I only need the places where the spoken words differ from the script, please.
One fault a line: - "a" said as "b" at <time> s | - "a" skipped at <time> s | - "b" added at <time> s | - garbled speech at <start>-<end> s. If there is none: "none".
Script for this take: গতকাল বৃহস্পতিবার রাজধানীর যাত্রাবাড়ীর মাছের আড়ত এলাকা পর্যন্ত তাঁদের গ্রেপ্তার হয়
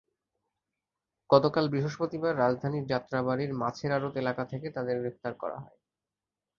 - "পর্যন্ত" said as "থেকে" at 4.5 s
- "করা" added at 5.4 s